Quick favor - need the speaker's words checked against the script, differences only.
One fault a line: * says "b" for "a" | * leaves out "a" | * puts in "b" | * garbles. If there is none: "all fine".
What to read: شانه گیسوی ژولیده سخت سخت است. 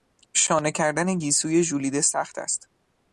* puts in "کردن"
* leaves out "سخت"